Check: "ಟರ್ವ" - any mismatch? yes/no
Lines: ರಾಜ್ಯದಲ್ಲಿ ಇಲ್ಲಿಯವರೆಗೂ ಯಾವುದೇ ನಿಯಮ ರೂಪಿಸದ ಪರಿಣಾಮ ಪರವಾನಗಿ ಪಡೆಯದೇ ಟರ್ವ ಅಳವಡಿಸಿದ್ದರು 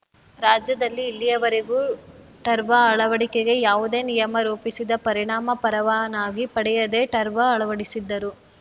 no